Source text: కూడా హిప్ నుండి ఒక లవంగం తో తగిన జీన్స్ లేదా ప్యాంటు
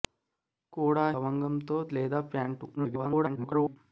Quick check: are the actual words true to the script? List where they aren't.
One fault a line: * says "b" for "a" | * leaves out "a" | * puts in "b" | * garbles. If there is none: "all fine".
* leaves out "హిప్ నుండి ఒక"
* leaves out "తగిన జీన్స్"
* garbles